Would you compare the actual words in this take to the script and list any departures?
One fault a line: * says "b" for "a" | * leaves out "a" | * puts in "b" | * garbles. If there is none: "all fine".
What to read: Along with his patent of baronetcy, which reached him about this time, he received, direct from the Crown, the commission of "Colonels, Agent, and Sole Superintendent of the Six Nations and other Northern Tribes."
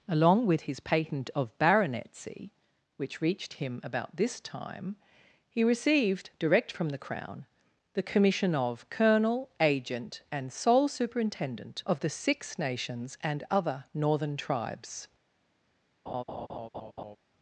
* says "Colonel" for "Colonels"